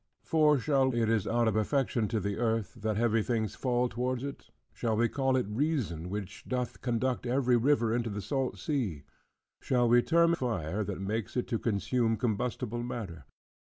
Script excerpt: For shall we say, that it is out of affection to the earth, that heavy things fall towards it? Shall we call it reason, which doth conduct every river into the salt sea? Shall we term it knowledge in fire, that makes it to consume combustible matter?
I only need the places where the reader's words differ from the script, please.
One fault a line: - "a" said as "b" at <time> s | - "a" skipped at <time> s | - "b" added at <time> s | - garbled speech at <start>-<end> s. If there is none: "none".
- "we say that" skipped at 0.9 s
- "it knowledge in" skipped at 10.3 s